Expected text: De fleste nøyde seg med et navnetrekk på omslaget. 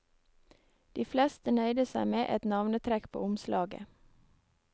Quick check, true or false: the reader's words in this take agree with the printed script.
true